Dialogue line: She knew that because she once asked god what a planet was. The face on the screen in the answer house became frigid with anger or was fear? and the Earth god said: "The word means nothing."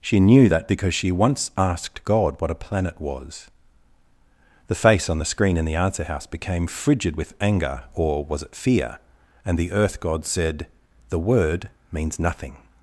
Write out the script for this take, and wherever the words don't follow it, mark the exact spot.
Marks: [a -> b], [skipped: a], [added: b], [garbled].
She knew that because she once asked god what a planet was. The face on the screen in the answer house became frigid with anger or was [added: it] fear? and the Earth god said: "The word means nothing."